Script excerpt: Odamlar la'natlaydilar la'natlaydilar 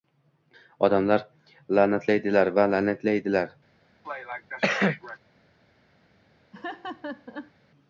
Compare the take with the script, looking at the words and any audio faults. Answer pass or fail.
fail